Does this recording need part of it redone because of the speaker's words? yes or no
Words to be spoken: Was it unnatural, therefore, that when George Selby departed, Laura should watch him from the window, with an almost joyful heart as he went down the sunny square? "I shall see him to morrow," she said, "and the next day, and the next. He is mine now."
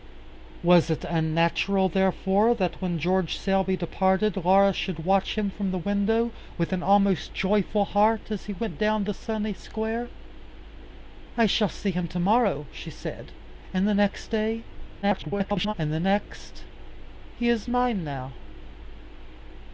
yes